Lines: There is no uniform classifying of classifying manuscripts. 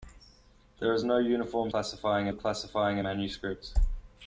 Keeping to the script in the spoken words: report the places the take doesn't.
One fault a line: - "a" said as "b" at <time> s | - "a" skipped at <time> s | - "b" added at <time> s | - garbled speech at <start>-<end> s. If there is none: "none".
none